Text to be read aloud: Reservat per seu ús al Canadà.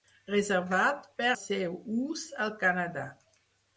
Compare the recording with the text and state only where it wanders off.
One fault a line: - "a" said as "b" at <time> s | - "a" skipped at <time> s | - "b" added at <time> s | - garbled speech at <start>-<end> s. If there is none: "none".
none